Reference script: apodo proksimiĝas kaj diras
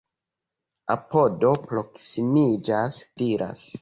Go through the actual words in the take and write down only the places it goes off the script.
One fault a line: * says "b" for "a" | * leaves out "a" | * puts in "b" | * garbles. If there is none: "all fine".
* leaves out "kaj"